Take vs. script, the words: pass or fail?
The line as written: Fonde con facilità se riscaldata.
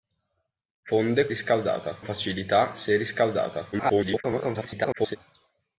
fail